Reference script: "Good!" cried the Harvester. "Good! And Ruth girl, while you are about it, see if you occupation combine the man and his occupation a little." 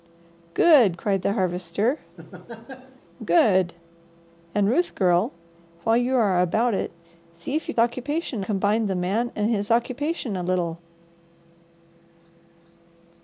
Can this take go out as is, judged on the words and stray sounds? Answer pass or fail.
fail